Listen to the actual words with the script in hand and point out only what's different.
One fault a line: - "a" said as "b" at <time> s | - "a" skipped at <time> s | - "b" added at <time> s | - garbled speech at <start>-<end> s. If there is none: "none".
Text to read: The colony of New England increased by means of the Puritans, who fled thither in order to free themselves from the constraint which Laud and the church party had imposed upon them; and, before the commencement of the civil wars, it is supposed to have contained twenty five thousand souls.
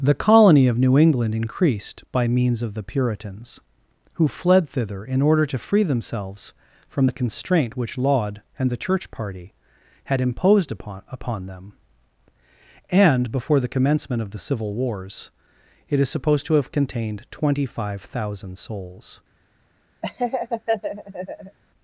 - "upon" added at 11.1 s